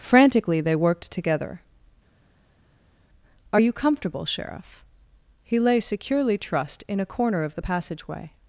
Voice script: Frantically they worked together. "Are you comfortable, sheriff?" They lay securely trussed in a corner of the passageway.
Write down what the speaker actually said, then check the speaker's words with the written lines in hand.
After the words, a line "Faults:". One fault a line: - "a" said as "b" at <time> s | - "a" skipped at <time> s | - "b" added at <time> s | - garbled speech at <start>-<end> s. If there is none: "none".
Frantically they worked together. "Are you comfortable, sheriff?" He lay securely trussed in a corner of the passageway.
Faults:
- "They" said as "He" at 5.4 s